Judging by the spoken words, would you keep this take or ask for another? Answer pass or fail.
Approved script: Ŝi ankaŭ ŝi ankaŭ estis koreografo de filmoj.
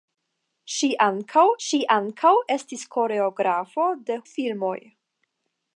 pass